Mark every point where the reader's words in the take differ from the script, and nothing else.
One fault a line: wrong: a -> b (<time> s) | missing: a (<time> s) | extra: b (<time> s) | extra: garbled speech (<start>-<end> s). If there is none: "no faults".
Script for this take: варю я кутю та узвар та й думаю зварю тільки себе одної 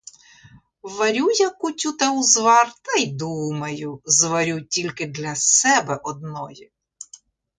extra: для (5.1 s)